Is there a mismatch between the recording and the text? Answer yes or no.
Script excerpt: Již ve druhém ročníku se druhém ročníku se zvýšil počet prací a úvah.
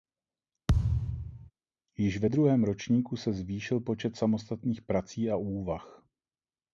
yes